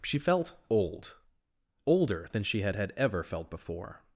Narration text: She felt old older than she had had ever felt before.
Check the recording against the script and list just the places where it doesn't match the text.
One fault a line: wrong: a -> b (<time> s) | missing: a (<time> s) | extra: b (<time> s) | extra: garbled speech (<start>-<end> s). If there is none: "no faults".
no faults